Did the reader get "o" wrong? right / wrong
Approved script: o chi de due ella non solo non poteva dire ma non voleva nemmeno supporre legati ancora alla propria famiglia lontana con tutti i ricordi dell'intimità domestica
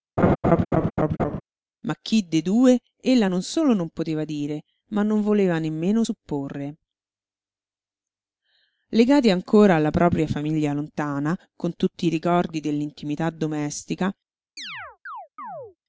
wrong